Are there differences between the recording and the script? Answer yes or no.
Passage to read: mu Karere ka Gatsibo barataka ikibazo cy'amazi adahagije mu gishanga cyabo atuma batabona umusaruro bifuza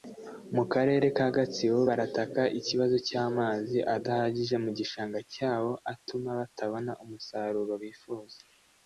no